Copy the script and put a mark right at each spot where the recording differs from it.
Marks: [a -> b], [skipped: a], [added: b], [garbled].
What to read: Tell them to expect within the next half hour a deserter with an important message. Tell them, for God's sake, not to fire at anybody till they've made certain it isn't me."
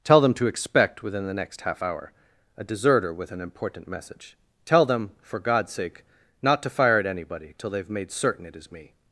Tell them to expect within the next half hour a deserter with an important message. Tell them, for God's sake, not to fire at anybody till they've made certain it [isn't -> is] me."